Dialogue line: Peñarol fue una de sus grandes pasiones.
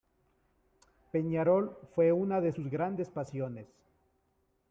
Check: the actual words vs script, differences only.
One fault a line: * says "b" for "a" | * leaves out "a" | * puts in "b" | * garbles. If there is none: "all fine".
all fine